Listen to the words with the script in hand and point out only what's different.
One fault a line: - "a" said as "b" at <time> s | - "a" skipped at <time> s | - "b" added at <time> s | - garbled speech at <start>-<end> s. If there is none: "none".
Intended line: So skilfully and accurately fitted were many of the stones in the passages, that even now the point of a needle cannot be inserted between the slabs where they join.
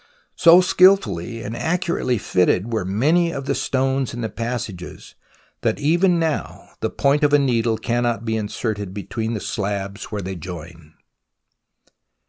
none